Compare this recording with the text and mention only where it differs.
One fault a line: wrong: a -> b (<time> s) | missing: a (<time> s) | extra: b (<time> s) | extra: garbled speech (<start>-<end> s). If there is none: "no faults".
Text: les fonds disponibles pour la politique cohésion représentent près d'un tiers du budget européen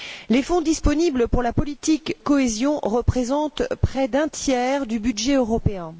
no faults